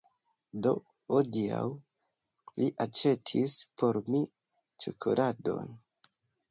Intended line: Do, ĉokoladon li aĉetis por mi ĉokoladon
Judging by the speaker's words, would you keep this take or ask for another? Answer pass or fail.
fail